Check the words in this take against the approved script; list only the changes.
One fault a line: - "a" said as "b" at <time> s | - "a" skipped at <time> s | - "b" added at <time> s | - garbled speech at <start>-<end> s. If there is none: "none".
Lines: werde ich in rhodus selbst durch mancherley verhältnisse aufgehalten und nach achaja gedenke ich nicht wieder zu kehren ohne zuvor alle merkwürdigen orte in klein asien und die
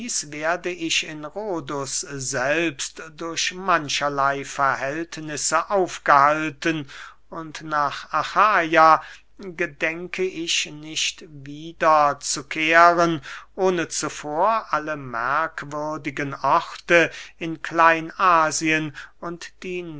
none